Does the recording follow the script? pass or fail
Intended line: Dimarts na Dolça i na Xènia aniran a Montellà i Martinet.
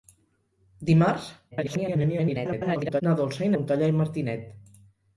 fail